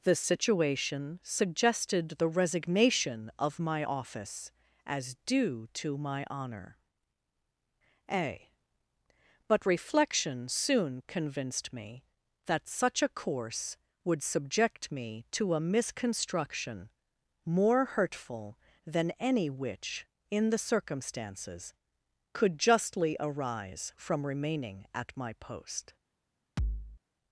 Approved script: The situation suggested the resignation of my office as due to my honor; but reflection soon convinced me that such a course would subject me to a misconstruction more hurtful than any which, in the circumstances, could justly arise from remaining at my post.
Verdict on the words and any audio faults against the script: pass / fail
fail